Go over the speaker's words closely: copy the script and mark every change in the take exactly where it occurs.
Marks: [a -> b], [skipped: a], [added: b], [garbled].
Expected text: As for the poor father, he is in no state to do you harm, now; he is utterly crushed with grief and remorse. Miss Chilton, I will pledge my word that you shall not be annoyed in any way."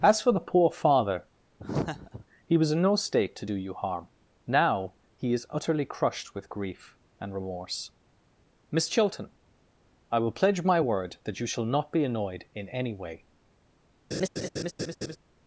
As for the poor father, he [is -> was] in no state to do you harm, now; he is utterly crushed with grief and remorse. Miss Chilton, I will pledge my word that you shall not be annoyed in any way."